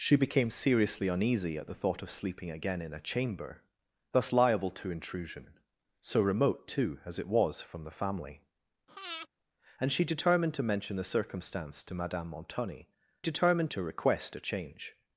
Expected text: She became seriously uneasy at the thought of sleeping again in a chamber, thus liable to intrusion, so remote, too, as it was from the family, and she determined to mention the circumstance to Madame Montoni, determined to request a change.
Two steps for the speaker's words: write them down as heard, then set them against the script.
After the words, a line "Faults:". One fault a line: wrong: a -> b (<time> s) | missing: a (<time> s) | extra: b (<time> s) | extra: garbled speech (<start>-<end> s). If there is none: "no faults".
She became seriously uneasy at the thought of sleeping again in a chamber, thus liable to intrusion, so remote, too, as it was from the family, and she determined to mention the circumstance to Madame Montoni, determined to request a change.
Faults:
no faults